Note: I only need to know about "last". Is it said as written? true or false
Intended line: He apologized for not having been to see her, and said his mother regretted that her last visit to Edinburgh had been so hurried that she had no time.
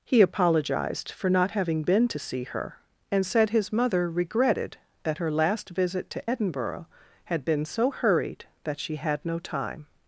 true